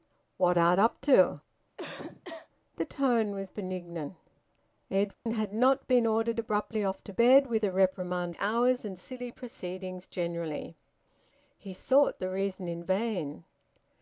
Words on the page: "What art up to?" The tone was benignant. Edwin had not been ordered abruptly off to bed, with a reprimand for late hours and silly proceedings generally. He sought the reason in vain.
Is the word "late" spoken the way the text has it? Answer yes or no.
no